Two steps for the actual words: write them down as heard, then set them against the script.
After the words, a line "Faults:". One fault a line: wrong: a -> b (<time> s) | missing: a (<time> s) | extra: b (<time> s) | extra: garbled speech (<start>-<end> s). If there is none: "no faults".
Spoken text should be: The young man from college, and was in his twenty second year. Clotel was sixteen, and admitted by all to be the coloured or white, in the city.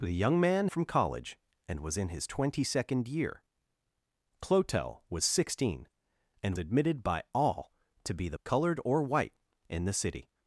The young man from college, and was in his twenty second year. Clotel was sixteen, and admitted by all to be the coloured or white, in the city.
Faults:
no faults